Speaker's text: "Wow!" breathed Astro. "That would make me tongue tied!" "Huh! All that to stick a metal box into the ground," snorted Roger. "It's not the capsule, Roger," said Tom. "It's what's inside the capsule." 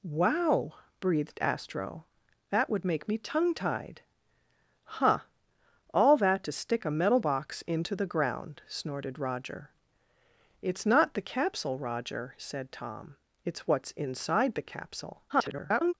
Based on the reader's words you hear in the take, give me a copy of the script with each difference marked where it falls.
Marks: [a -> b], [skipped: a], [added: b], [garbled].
"Wow!" breathed Astro. "That would make me tongue tied!" "Huh! All that to stick a metal box into the ground," snorted Roger. "It's not the capsule, Roger," said Tom. "It's what's inside the capsule." [garbled]